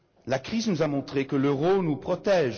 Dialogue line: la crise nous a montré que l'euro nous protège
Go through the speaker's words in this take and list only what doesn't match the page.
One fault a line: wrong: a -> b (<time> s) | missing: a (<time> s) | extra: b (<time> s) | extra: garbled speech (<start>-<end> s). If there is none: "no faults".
no faults